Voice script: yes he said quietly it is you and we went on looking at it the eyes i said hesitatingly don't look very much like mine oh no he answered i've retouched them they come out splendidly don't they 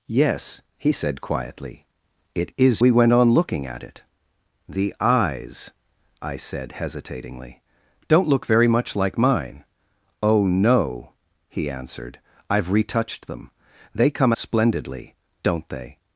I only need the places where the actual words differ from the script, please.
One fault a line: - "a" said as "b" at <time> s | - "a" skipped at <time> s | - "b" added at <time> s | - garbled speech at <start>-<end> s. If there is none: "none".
- "you and" skipped at 2.8 s
- "out" skipped at 14.3 s